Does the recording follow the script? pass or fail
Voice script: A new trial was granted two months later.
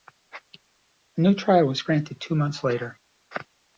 pass